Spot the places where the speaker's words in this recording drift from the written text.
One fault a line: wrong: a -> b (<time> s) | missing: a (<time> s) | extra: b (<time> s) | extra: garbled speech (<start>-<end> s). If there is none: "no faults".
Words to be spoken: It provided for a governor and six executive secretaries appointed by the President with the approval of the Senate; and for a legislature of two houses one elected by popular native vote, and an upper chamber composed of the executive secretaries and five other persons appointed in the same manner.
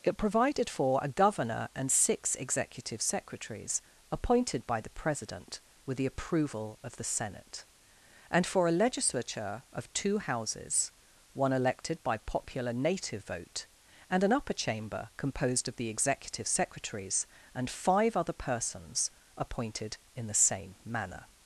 no faults